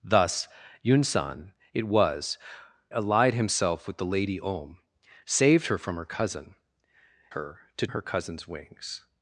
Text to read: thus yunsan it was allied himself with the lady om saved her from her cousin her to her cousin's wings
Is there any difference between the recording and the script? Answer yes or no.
no